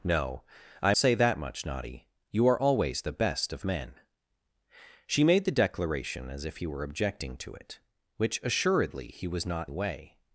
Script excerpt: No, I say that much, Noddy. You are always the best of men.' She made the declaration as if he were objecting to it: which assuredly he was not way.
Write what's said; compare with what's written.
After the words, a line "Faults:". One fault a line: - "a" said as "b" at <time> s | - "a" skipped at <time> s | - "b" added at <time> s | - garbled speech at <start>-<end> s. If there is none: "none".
No, I say that much, Noddy. You are always the best of men.' She made the declaration as if he were objecting to it: which assuredly he was not way.
Faults:
none